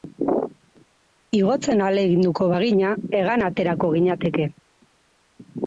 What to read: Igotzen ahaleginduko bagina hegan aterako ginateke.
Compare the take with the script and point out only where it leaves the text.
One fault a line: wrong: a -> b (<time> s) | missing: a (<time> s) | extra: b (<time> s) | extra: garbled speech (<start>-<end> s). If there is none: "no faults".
no faults